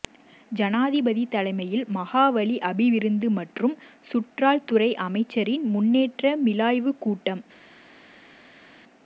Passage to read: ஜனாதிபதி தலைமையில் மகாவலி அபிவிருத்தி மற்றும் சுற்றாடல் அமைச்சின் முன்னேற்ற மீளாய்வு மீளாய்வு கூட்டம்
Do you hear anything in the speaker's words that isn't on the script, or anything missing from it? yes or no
yes